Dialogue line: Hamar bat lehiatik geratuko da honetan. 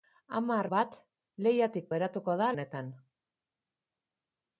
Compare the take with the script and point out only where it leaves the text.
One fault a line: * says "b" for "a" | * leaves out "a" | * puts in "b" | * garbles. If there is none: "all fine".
all fine